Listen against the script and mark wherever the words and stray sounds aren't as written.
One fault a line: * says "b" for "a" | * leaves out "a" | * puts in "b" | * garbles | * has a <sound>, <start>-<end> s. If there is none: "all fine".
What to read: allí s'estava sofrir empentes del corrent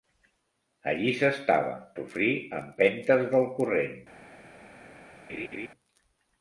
* has a laugh, 5.3-5.7 s